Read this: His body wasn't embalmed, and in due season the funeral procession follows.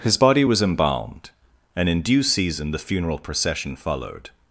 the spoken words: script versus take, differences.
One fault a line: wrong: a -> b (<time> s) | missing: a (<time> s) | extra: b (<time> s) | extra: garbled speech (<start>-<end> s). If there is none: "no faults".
wrong: wasn't -> was (0.4 s)
wrong: follows -> followed (3.7 s)